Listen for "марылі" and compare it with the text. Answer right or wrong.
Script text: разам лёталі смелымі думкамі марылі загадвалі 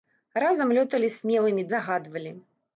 wrong